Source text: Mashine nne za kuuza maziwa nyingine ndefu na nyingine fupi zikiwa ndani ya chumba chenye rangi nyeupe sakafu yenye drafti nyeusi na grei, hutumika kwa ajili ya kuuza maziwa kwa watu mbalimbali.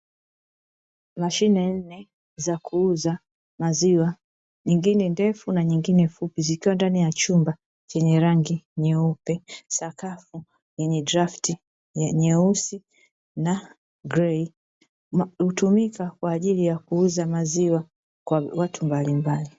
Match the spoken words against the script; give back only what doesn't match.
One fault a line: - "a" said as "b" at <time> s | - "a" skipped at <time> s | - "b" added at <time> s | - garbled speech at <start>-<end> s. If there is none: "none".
none